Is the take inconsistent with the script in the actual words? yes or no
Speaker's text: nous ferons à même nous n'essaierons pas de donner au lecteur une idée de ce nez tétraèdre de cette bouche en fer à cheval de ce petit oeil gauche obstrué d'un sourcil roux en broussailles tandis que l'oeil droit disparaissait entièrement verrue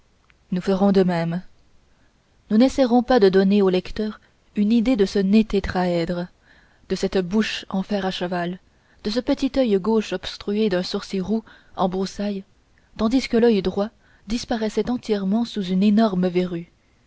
yes